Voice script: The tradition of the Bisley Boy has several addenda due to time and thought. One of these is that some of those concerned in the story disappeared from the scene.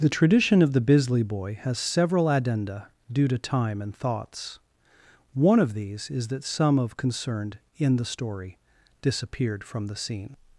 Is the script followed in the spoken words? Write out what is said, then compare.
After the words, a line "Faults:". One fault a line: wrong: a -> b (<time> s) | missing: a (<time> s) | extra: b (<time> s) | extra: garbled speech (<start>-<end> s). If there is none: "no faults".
The tradition of the Bisley Boy has several addenda due to time and thoughts. One of these is that some of concerned in the story disappeared from the scene.
Faults:
wrong: thought -> thoughts (4.0 s)
missing: those (7.0 s)